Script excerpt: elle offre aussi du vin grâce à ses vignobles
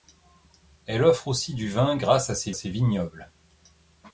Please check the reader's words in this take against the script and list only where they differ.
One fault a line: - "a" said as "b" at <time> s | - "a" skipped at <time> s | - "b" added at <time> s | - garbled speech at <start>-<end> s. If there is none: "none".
- "ses" added at 2.5 s